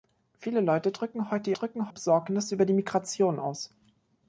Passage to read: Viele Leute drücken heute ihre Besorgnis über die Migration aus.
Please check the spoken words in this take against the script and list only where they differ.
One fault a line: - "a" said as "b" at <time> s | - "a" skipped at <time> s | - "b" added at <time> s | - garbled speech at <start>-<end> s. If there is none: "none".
- "ihre" said as "drücken" at 1.5 s